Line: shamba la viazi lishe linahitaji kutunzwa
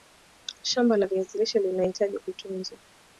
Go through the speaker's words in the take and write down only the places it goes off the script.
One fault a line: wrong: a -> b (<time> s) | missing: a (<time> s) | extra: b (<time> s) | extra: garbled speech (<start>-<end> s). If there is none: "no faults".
no faults